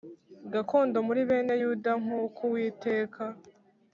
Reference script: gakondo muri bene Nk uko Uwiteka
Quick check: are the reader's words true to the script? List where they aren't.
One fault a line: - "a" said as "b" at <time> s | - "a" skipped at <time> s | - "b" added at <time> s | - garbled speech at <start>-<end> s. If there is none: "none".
- "Yuda" added at 1.6 s